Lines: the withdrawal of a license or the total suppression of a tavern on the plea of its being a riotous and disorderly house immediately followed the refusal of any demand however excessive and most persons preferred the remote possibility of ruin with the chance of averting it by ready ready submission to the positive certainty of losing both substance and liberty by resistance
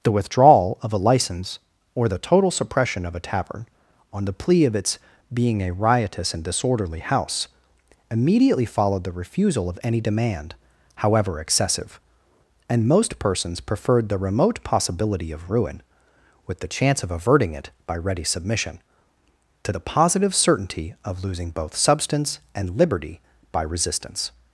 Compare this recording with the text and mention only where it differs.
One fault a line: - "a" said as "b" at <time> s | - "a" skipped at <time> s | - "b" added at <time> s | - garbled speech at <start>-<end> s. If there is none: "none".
- "ready" skipped at 18.2 s